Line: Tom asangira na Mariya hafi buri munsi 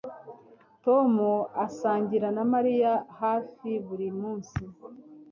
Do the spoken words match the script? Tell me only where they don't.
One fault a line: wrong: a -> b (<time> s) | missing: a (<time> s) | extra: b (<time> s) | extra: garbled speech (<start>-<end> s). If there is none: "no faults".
no faults